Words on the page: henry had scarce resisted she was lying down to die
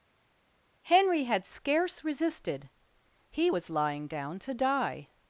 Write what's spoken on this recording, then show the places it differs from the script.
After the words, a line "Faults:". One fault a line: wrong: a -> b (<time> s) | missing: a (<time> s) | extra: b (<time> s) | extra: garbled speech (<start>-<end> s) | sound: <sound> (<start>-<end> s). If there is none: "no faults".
henry had scarce resisted he was lying down to die
Faults:
wrong: she -> he (3.3 s)